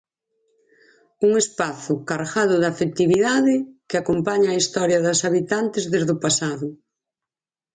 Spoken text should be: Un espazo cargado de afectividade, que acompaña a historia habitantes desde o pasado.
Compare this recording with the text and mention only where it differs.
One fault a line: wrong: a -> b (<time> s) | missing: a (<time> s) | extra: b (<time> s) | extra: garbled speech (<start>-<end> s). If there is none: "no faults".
extra: das (5.1 s)